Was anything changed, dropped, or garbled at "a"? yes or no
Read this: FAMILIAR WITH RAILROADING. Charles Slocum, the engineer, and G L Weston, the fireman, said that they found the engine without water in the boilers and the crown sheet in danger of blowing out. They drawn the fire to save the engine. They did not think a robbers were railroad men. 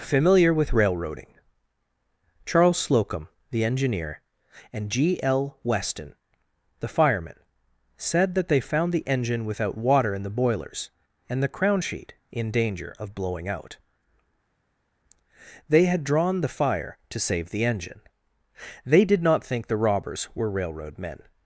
yes